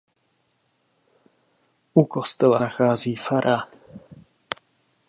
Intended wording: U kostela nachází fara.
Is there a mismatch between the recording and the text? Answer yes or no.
no